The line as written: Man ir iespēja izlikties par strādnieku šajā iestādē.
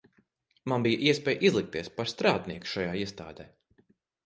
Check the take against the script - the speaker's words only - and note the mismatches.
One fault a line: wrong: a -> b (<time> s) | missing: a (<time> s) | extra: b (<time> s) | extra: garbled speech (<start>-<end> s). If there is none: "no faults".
wrong: ir -> bija (0.8 s)